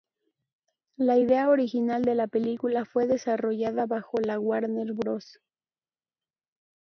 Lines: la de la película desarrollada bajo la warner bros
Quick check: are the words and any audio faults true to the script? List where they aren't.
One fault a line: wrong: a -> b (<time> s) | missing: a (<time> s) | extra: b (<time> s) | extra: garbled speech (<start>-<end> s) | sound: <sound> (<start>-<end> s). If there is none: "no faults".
extra: idea original (1.2 s)
extra: fue (2.8 s)